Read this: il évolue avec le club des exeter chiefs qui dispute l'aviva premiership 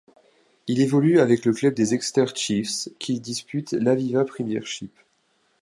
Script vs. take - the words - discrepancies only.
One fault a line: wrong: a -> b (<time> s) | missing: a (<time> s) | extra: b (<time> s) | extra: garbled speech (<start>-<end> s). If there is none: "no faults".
no faults